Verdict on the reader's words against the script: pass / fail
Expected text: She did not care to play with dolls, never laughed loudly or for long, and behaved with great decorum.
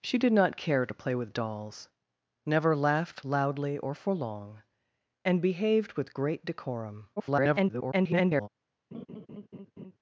fail